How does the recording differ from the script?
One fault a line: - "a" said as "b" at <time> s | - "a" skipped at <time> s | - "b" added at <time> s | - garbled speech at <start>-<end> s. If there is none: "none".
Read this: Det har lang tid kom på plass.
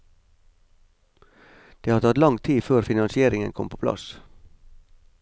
- "tatt" added at 2.0 s
- "før finansieringen" added at 2.6 s